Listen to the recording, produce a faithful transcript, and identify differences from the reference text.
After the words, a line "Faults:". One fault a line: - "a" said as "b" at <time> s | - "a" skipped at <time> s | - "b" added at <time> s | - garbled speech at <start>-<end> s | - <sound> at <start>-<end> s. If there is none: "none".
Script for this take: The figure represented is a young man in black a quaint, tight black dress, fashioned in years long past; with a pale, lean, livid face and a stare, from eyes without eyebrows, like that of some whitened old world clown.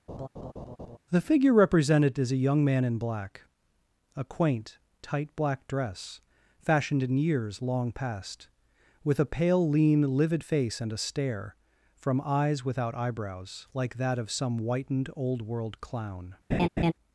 The figure represented is a young man in black a quaint, tight black dress, fashioned in years long past; with a pale, lean, livid face and a stare, from eyes without eyebrows, like that of some whitened old world clown.
Faults:
- laugh at 0.1-1.0 s
- laugh at 16.5-16.9 s